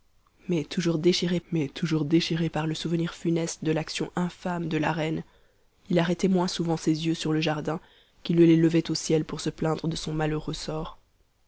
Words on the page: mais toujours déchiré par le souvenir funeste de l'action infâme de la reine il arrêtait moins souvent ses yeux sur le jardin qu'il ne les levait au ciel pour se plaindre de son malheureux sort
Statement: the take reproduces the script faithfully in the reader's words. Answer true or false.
false